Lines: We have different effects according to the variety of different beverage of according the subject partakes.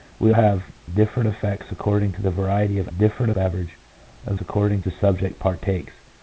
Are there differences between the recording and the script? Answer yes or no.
no